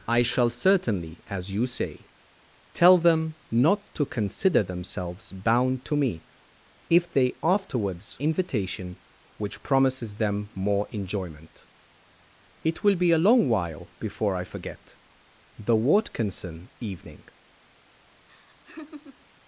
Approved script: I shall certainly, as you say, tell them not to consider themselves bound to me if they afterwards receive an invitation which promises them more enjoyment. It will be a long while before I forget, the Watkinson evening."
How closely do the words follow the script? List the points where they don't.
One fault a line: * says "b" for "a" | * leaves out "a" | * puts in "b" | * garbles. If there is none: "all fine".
* leaves out "receive an"